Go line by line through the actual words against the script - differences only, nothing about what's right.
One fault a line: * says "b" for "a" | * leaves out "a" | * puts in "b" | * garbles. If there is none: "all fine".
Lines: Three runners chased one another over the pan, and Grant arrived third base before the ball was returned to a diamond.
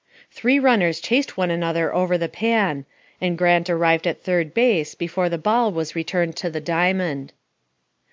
* puts in "at"
* says "the" for "a"